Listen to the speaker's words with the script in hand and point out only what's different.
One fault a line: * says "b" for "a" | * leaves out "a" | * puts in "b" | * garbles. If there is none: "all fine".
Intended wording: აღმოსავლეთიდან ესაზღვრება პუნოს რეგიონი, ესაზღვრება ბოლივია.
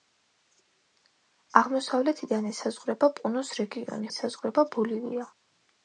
all fine